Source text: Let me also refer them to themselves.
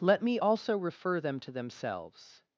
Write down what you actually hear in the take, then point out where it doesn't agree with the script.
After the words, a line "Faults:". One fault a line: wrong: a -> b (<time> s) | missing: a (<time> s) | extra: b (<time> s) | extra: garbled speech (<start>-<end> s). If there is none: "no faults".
Let me also refer them to themselves.
Faults:
no faults